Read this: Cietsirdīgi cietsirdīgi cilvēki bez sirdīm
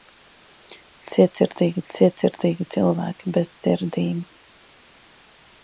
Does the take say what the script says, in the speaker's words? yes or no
yes